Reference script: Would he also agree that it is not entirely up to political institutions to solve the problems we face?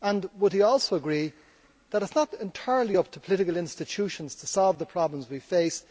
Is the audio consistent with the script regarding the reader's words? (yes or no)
yes